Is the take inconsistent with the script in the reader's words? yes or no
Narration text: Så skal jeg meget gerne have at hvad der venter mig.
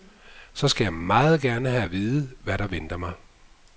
yes